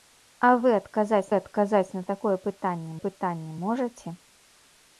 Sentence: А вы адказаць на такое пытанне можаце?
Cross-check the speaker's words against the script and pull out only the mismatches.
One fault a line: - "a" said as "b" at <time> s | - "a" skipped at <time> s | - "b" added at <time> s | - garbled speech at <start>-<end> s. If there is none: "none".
- "адказаць" added at 1.4 s
- "пытанне" added at 3.0 s